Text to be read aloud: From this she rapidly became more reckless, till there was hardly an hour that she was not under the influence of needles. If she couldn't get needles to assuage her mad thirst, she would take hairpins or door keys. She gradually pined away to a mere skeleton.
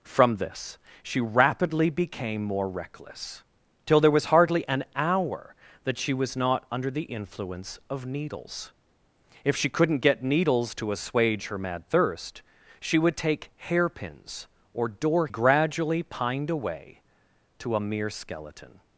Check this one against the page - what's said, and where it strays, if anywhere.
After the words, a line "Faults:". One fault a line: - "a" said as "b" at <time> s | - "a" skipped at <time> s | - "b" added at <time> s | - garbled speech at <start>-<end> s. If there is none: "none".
From this she rapidly became more reckless, till there was hardly an hour that she was not under the influence of needles. If she couldn't get needles to assuage her mad thirst, she would take hairpins or door gradually pined away to a mere skeleton.
Faults:
- "keys She" skipped at 15.3 s